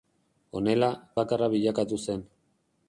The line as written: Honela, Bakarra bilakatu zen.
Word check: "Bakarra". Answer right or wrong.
right